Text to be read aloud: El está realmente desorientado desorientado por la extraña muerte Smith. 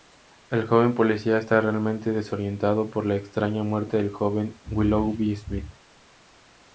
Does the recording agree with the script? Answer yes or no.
no